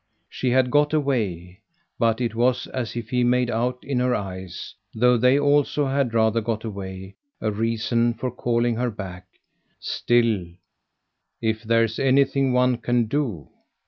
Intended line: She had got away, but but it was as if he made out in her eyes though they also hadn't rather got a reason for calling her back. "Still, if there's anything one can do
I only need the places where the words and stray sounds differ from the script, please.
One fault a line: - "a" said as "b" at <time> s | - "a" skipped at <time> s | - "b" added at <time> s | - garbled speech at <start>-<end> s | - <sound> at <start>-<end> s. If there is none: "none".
- "but" skipped at 2.2 s
- "hadn't" said as "had" at 5.8 s
- "away" added at 6.6 s